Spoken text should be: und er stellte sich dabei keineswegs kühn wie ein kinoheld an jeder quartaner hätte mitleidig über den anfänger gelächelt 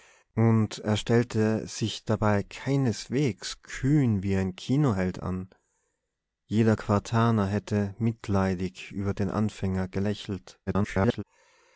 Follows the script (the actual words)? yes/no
no